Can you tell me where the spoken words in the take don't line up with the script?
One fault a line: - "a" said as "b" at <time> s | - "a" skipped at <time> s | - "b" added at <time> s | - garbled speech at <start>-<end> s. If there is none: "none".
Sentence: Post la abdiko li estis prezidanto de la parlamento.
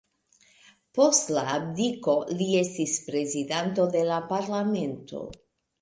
none